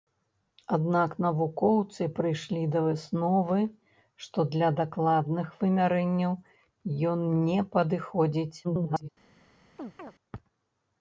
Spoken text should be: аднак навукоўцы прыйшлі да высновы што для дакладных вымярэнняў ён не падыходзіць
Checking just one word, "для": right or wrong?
right